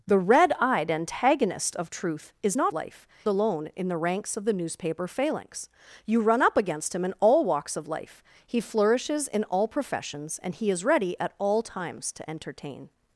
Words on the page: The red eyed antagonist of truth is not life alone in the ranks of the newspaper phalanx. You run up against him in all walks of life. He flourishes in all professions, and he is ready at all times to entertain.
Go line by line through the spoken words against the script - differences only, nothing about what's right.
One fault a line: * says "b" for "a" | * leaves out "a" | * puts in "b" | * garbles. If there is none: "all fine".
all fine